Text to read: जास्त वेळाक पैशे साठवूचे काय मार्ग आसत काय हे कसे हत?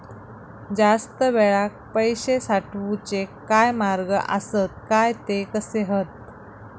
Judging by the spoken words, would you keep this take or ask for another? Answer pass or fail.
fail